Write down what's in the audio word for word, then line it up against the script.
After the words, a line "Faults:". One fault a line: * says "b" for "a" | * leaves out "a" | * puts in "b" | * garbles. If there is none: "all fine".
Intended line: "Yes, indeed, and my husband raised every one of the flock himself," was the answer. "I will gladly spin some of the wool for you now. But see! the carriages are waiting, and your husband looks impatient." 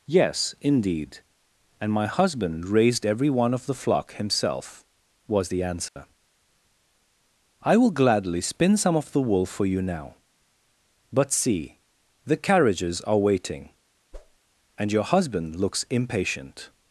"Yes, indeed, and my husband raised every one of the flock himself," was the answer. "I will gladly spin some of the wool for you now. But see! the carriages are waiting, and your husband looks impatient."
Faults:
all fine